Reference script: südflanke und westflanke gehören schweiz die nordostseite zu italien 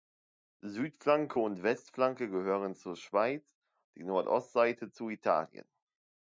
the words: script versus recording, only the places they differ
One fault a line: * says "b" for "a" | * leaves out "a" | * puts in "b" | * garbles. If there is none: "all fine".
* puts in "zur"